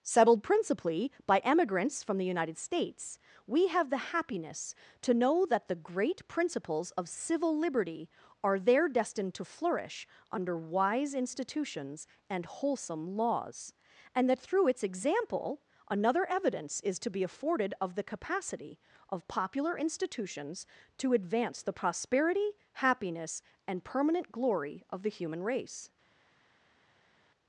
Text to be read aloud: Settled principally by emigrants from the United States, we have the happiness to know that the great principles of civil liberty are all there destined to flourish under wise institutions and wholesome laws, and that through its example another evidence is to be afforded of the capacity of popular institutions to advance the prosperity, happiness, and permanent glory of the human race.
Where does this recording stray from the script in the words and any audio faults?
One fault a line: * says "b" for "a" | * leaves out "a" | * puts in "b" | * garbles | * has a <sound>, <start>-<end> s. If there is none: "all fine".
* leaves out "all"